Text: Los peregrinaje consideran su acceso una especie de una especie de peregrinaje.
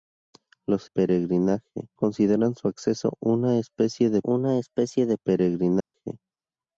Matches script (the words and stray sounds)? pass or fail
fail